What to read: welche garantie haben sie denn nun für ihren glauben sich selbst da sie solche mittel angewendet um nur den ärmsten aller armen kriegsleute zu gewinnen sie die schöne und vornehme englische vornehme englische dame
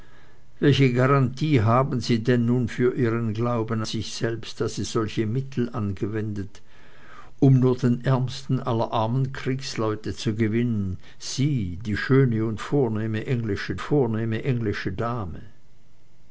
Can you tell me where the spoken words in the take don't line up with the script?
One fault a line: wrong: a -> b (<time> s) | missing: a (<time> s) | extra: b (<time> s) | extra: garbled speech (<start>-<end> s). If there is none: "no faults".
no faults